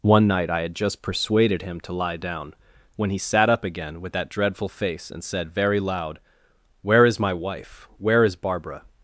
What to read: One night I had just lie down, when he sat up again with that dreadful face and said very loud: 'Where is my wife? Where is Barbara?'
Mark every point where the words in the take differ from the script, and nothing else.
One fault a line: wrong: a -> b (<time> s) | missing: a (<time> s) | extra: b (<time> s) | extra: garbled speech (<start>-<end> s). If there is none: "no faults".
extra: persuaded him to (1.0 s)